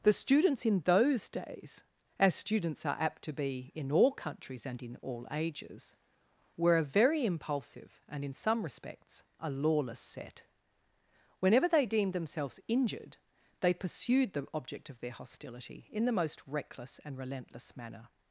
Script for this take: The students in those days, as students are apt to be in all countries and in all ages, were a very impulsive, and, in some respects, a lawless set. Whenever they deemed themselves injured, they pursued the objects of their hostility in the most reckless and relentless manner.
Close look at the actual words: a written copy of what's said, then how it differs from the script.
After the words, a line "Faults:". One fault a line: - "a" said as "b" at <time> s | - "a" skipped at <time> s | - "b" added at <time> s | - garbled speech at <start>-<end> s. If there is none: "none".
The students in those days, as students are apt to be in all countries and in all ages, were a very impulsive, and, in some respects, a lawless set. Whenever they deemed themselves injured, they pursued the object of their hostility in the most reckless and relentless manner.
Faults:
- "objects" said as "object" at 14.6 s